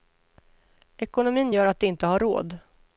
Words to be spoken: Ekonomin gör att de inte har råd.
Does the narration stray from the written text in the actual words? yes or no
no